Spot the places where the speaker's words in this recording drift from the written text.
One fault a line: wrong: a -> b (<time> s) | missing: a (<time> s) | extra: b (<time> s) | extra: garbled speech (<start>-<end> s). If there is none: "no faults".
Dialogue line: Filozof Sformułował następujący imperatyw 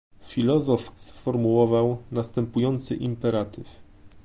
no faults